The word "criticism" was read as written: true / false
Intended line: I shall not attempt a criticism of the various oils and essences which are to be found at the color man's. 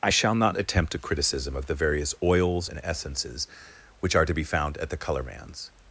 true